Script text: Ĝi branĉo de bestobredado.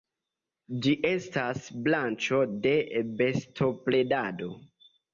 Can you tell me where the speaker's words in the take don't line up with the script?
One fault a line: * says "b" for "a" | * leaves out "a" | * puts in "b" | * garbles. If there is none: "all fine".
* puts in "estas"